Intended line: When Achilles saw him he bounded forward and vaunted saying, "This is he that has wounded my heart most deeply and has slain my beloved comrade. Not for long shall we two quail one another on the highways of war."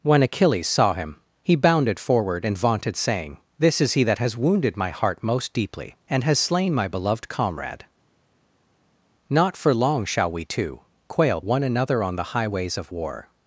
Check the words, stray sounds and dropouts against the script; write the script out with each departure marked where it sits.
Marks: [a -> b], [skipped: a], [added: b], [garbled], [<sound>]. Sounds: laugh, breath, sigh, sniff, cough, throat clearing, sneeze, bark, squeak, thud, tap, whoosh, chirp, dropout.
When Achilles saw him he bounded forward and vaunted saying, "This is he that has wounded my heart most deeply and has slain my beloved comrade. Not for long shall we two quail one another on the highways of war."